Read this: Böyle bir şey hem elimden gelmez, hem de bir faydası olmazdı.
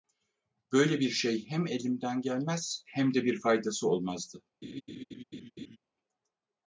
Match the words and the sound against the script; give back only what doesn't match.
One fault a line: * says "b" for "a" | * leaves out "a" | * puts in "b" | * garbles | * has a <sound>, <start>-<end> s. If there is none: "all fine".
* has a laugh, 4.6-5.8 s